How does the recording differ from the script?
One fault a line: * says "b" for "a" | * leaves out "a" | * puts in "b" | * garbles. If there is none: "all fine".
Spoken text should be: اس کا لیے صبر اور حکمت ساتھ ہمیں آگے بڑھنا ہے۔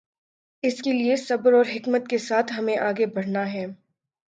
* says "کے" for "کا"
* puts in "کے"